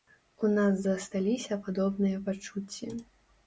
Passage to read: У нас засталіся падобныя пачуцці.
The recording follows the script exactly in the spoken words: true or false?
true